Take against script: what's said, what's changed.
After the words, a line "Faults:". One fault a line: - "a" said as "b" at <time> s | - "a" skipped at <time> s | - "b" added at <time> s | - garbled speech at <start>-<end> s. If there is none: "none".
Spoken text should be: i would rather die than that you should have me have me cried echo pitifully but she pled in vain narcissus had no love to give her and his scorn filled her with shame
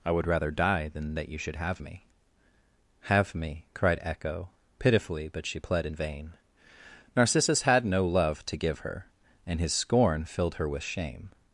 i would rather die than that you should have me have me cried echo pitifully but she pled in vain narcissus had no love to give her and his scorn filled her with shame
Faults:
none